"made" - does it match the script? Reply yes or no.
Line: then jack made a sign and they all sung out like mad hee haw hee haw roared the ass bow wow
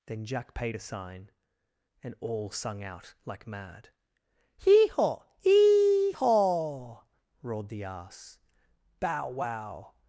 no